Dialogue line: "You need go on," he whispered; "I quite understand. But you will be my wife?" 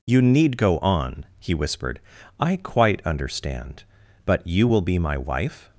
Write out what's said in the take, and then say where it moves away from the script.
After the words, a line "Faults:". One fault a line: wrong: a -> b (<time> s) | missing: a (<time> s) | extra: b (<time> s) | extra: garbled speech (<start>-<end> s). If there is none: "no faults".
"You need go on," he whispered; "I quite understand. But you will be my wife?"
Faults:
no faults